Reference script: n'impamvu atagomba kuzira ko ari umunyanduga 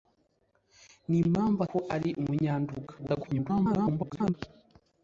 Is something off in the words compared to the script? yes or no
yes